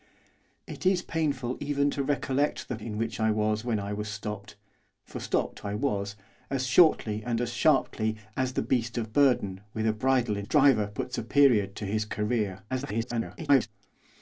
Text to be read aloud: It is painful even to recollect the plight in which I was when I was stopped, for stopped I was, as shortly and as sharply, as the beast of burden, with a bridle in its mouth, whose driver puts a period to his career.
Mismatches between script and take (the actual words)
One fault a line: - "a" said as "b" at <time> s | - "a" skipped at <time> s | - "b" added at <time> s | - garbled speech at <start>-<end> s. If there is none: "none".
- "plight" skipped at 2.8 s
- "its mouth whose" skipped at 10.5 s
- garbled speech at 12.7-13.7 s